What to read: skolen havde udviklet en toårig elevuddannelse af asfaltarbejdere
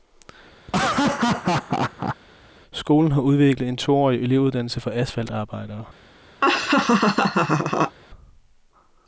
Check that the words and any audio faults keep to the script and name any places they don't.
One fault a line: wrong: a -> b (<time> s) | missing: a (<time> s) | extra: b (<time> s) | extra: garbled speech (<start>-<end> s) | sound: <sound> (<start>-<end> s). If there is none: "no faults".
sound: laugh (0.7-2.2 s)
wrong: havde -> har (3.1 s)
wrong: af -> for (4.8 s)
sound: laugh (6.4-8.0 s)